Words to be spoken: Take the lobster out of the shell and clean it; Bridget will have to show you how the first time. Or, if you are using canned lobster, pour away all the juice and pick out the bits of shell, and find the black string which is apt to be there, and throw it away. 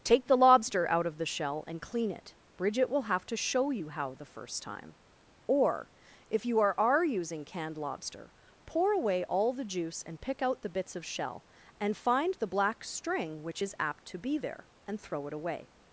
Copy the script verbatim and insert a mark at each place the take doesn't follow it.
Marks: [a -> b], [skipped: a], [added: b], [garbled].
Take the lobster out of the shell and clean it; Bridget will have to show you how the first time. Or, if you are [added: are] using canned lobster, pour away all the juice and pick out the bits of shell, and find the black string which is apt to be there, and throw it away.